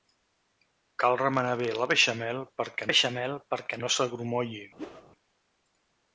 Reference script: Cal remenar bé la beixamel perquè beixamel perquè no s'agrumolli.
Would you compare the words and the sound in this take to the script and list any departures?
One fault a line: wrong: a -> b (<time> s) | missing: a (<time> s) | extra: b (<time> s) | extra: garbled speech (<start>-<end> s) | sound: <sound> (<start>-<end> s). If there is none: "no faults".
sound: whoosh (4.8-5.1 s)